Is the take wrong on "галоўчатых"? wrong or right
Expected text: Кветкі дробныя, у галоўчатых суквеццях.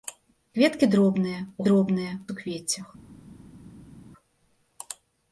wrong